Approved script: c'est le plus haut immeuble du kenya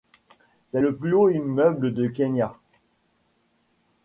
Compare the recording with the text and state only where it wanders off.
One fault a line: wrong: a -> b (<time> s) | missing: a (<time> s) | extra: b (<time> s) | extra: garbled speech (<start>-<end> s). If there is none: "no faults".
no faults